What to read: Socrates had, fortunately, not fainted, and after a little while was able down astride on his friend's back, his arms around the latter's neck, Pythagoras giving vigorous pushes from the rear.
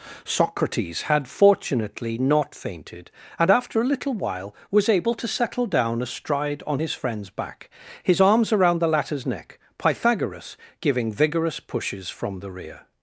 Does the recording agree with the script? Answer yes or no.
no